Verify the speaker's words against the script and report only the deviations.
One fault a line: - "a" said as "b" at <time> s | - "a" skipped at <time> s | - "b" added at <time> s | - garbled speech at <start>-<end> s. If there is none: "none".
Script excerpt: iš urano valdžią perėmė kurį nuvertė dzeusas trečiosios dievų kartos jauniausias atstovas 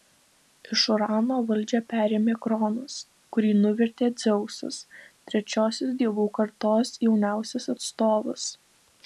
- "kronas" added at 2.5 s